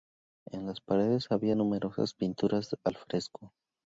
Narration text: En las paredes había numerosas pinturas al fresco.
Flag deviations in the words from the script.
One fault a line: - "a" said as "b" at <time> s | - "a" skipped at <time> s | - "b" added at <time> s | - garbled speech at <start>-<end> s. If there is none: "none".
none